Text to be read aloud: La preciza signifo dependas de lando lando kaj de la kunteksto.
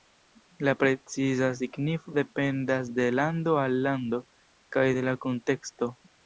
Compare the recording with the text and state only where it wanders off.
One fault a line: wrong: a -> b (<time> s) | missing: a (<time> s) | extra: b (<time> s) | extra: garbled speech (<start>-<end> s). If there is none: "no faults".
extra: al (3.6 s)